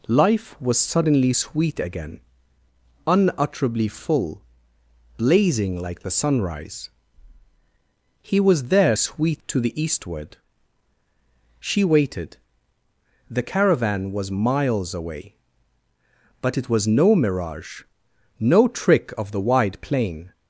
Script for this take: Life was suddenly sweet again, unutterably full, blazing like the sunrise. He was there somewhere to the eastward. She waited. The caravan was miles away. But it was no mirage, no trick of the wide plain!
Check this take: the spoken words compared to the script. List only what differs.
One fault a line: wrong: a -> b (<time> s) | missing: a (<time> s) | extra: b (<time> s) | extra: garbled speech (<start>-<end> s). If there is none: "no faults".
wrong: somewhere -> sweet (8.9 s)